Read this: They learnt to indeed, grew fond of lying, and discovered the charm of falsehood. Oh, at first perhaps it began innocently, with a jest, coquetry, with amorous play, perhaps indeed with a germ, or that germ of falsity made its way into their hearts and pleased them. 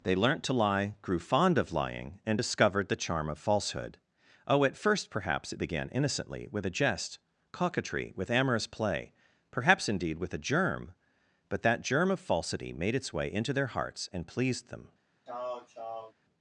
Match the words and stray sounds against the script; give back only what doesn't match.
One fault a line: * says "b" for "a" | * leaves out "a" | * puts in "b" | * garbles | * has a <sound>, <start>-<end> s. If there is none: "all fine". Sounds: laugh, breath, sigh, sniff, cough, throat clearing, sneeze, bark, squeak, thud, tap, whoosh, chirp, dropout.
* says "lie" for "indeed"
* says "but" for "or"
* has a throat clearing, 15.3-16.1 s